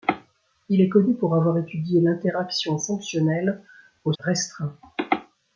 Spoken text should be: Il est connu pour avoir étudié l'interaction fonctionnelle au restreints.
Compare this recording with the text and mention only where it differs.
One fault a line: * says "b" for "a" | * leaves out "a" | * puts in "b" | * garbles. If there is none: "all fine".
all fine